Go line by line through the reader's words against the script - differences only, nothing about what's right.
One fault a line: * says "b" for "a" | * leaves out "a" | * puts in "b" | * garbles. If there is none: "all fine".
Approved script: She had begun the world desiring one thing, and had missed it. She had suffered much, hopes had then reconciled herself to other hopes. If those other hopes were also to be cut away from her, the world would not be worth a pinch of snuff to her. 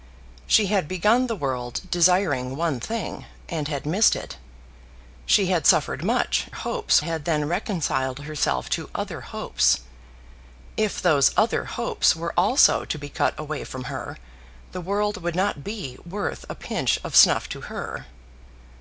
all fine